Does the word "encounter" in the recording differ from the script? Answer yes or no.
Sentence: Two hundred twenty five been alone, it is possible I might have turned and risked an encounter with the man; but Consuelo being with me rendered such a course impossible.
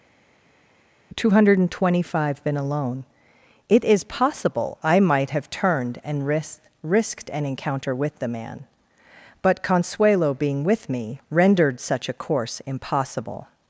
no